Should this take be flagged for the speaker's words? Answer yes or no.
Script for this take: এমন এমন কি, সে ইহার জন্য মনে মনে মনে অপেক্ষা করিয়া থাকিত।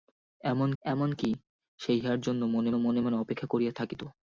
no